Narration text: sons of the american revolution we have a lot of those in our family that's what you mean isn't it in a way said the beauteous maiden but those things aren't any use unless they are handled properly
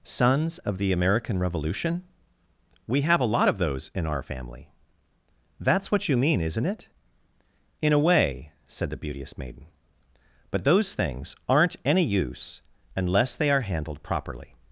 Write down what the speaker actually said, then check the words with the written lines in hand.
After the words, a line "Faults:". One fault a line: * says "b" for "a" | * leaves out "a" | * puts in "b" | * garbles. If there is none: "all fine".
sons of the american revolution we have a lot of those in our family that's what you mean isn't it in a way said the beauteous maiden but those things aren't any use unless they are handled properly
Faults:
all fine